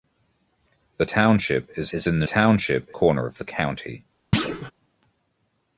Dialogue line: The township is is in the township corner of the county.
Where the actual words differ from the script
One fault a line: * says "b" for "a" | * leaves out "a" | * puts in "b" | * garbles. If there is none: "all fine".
all fine